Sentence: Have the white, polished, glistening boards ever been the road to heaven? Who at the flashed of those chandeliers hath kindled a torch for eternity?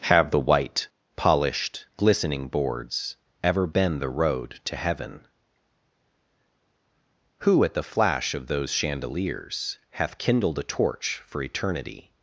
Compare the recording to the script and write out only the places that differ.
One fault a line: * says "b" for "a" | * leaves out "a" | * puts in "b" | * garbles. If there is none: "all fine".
* says "flash" for "flashed"